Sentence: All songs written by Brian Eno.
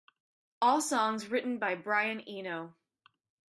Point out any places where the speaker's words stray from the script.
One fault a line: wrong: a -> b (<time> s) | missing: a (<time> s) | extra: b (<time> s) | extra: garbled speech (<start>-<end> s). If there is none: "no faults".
no faults